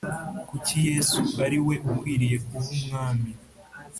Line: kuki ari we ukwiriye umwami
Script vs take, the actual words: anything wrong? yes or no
yes